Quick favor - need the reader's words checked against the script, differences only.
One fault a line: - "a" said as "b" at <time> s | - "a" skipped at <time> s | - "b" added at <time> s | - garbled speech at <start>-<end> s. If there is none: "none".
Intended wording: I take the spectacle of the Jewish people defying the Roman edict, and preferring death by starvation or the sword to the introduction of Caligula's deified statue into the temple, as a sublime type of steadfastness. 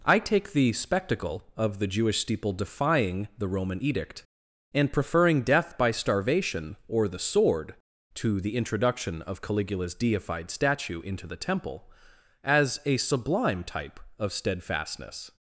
- "people" said as "steeple" at 2.2 s